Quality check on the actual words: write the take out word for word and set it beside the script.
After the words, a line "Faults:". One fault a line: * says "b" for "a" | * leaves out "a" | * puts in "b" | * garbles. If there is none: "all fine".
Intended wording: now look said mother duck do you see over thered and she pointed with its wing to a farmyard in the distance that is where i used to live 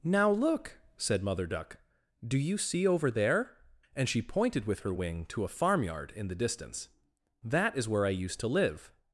now look said mother duck do you see over there and she pointed with her wing to a farmyard in the distance that is where i used to live
Faults:
* says "there" for "thered"
* says "her" for "its"